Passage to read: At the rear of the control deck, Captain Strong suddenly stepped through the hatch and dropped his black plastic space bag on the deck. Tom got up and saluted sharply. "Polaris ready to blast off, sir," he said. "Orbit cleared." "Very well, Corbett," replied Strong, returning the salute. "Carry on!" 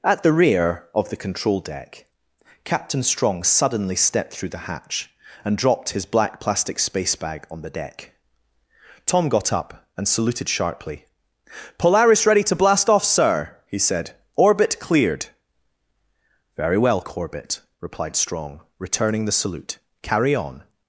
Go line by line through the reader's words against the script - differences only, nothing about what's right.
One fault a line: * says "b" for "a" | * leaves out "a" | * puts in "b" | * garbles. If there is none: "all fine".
all fine